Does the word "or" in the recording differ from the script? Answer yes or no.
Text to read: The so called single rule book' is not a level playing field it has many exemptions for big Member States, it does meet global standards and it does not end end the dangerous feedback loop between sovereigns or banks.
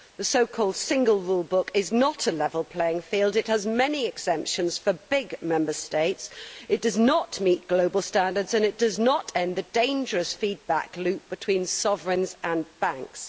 yes